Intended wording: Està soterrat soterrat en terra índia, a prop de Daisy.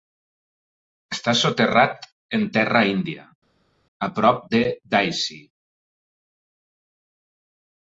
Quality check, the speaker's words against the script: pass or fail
fail